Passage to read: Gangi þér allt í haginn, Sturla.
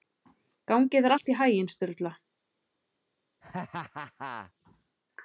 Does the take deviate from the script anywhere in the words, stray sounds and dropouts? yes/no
yes